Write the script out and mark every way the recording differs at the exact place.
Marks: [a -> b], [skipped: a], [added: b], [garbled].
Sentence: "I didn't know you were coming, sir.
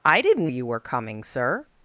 "I didn't [skipped: know] you were coming, sir.